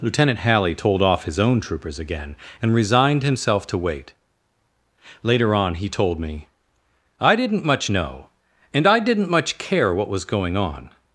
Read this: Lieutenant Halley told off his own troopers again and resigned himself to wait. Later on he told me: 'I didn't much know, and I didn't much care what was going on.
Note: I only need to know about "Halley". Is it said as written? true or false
true